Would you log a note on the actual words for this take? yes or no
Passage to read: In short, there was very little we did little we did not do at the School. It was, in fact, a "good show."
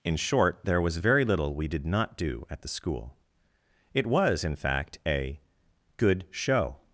yes